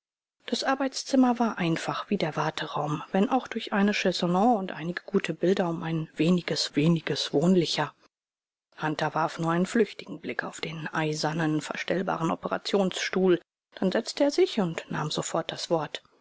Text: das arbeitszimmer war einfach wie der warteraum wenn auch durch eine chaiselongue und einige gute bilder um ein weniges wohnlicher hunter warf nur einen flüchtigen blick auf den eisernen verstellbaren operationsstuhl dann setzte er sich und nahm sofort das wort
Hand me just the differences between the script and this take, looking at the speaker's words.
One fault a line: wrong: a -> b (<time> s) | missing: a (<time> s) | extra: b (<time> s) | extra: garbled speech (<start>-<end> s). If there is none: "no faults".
extra: weniges (6.7 s)